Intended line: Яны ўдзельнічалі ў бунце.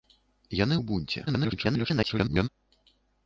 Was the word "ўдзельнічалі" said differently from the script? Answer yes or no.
yes